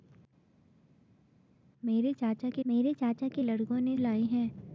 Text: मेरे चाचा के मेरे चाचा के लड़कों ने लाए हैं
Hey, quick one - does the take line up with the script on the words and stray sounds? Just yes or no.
yes